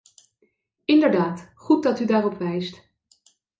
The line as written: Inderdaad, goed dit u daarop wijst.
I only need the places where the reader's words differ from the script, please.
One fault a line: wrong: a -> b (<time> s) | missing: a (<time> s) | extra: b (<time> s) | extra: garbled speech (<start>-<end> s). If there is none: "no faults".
wrong: dit -> dat (1.8 s)